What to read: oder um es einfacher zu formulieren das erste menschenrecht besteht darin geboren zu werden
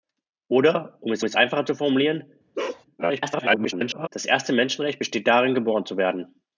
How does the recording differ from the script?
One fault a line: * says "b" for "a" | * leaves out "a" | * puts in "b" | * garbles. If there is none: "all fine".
* puts in "es"
* garbles